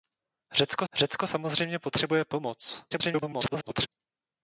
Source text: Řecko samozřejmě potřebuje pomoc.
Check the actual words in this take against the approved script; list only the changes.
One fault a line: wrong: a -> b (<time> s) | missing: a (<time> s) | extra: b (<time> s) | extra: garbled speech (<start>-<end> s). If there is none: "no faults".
extra: řecko (0.9 s)
extra: garbled speech (2.9-3.9 s)